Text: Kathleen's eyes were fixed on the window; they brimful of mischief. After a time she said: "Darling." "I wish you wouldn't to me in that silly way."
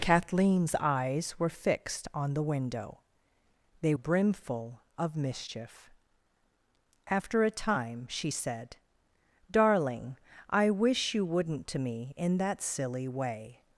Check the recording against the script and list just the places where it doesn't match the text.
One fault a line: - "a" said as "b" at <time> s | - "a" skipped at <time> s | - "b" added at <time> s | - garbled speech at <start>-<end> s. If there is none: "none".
none